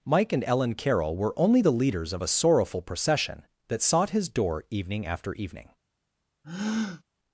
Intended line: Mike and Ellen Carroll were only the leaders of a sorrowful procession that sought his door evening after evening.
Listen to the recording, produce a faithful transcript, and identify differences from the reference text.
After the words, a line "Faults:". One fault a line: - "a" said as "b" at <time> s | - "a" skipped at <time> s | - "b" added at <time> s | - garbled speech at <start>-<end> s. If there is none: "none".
Mike and Ellen Carroll were only the leaders of a sorrowful procession that sought his door evening after evening.
Faults:
none